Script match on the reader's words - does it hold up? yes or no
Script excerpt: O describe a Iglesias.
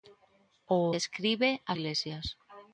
yes